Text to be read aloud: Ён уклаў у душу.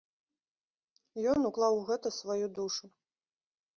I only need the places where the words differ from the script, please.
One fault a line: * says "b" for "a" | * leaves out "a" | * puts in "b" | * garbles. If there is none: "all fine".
* puts in "гэта сваю"